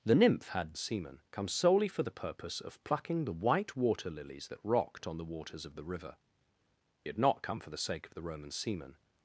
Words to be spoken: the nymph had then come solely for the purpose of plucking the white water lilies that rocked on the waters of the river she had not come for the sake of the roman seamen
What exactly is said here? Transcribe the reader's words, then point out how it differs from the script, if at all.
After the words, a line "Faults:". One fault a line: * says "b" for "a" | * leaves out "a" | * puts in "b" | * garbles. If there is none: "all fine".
the nymph had seamen come solely for the purpose of plucking the white water lilies that rocked on the waters of the river had not come for the sake of the roman seamen
Faults:
* says "seamen" for "then"
* leaves out "she"